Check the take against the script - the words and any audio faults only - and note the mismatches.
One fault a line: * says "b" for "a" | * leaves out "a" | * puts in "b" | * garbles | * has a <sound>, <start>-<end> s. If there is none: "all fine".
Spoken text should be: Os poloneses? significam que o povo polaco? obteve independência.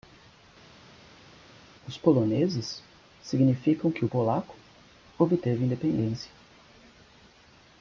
* leaves out "povo"